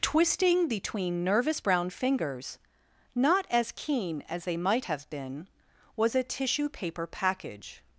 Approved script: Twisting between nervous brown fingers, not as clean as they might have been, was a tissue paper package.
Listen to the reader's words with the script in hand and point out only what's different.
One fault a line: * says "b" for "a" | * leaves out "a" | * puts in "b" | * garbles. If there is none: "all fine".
* says "keen" for "clean"